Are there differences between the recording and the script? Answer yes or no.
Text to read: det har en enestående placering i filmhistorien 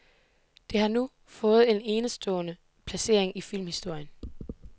yes